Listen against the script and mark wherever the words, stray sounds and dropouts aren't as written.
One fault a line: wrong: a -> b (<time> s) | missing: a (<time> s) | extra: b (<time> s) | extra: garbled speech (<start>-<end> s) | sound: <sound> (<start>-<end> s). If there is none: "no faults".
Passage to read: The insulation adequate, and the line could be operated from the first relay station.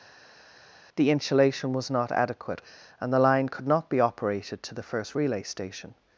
extra: was not (1.7 s)
extra: not (3.7 s)
wrong: from -> to (4.6 s)